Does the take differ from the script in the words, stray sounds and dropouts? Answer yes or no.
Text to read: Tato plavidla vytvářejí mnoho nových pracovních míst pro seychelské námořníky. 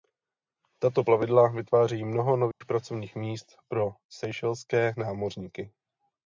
yes